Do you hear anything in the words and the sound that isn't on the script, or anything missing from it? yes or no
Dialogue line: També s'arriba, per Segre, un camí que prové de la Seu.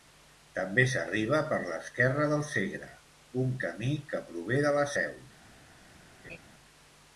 yes